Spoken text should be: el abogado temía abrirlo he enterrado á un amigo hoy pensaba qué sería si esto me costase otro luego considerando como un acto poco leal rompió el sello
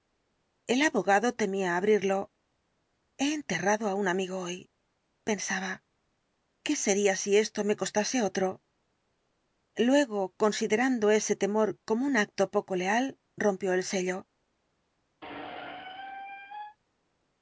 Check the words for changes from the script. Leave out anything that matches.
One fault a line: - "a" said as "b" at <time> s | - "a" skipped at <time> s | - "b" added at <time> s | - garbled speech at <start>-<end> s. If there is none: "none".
- "ese temor" added at 11.2 s